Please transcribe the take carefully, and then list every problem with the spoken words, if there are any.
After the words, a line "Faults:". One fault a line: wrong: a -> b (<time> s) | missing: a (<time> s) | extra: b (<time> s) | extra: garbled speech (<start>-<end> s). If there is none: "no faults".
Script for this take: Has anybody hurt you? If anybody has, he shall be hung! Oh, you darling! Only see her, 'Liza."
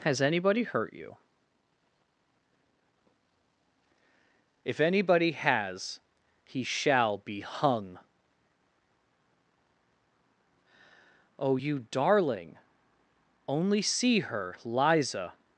Has anybody hurt you? If anybody has, he shall be hung! Oh, you darling! Only see her, 'Liza."
Faults:
no faults